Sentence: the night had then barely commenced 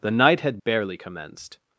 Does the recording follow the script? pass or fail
fail